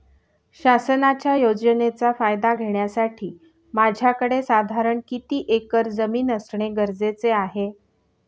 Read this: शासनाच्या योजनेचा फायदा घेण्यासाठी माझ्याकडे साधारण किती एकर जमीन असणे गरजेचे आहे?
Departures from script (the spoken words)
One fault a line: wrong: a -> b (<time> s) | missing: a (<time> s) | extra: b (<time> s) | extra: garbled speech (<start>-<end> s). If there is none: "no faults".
no faults